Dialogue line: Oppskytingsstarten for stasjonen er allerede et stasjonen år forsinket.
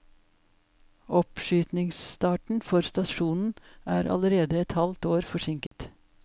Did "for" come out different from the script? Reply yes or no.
no